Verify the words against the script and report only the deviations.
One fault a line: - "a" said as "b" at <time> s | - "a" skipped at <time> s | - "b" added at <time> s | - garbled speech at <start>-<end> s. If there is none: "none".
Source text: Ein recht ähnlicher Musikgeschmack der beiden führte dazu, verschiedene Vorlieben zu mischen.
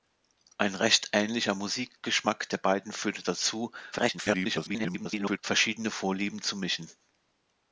- garbled speech at 3.9-5.4 s